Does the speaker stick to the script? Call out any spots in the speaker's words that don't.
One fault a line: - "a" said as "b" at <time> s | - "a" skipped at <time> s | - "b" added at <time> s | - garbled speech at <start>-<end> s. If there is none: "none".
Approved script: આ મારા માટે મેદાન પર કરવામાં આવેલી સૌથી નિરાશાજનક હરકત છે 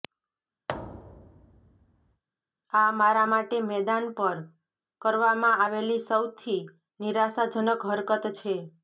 none